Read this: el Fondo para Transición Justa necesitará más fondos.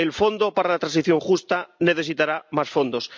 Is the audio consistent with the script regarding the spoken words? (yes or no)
no